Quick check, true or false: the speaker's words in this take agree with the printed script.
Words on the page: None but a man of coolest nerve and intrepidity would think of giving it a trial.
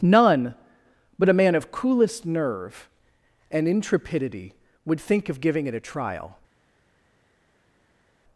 true